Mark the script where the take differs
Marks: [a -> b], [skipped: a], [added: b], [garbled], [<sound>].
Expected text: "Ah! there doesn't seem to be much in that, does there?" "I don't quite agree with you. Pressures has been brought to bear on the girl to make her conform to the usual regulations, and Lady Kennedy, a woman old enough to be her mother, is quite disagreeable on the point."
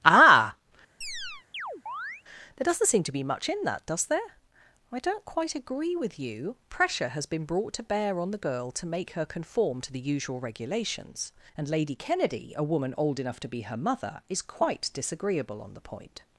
"Ah! [chirp] there doesn't seem to be much in that, does there?" "I don't quite agree with you. [Pressures -> Pressure] has been brought to bear on the girl to make her conform to the usual regulations, and Lady Kennedy, a woman old enough to be her mother, is quite disagreeable on the point."